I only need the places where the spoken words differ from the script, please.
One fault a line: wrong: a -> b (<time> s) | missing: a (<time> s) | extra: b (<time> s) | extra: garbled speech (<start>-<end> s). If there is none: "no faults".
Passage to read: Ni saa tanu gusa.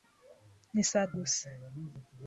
missing: tanu (1.1 s)